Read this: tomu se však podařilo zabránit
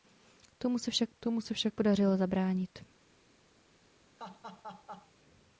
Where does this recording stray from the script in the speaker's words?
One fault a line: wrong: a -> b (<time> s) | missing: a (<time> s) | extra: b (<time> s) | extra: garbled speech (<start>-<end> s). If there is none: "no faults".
extra: tomu se však (1.2 s)